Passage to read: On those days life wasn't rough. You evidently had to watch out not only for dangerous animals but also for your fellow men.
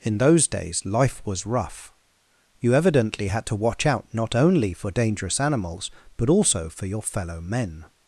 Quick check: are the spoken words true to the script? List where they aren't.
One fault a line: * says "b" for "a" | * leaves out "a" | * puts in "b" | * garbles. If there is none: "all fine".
* says "In" for "On"
* says "was" for "wasn't"